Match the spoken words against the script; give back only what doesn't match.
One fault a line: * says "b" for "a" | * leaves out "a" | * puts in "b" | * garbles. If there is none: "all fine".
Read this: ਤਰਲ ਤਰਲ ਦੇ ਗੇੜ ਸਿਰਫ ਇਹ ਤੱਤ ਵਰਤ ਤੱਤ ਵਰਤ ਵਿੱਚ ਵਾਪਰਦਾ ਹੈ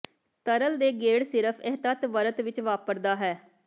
* leaves out "ਤਰਲ"
* leaves out "ਤੱਤ ਵਰਤ"